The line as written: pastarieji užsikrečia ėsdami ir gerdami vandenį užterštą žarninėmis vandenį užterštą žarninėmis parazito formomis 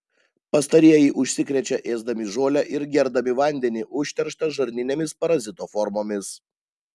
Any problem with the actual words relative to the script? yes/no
yes